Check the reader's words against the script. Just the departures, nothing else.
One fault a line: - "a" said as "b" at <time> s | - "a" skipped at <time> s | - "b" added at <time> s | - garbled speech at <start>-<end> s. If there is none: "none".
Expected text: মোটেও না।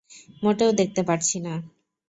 - "দেখতে পারছি" added at 0.7 s